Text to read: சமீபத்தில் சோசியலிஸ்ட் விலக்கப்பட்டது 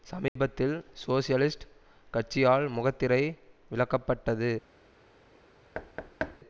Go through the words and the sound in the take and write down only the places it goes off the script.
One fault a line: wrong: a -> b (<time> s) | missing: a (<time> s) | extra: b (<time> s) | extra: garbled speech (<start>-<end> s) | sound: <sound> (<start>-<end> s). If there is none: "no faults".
sound: dropout (0.3-0.4 s)
extra: கட்சியால் முகத்திரை (2.1 s)
sound: thud (5.7-6.4 s)